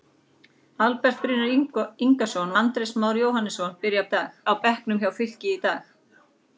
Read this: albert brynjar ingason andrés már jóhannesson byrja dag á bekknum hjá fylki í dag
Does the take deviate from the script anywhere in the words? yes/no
no